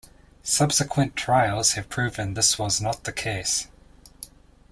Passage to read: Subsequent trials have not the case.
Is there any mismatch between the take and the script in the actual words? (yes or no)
yes